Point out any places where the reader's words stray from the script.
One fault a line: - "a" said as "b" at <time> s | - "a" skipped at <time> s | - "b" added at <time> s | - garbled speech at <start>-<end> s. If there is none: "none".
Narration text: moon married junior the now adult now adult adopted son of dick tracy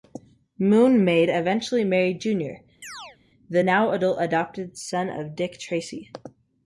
- "maid eventually" added at 1.1 s
- "now adult" skipped at 4.2 s